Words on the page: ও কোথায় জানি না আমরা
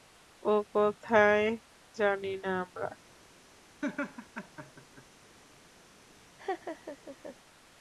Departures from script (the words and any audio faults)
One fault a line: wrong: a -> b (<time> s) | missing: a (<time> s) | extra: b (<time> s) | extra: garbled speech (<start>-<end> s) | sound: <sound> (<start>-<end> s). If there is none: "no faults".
sound: laugh (3.8-5.0 s)
sound: laugh (6.4-7.4 s)